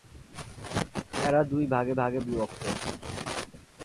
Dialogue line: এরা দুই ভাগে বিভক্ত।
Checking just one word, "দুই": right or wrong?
right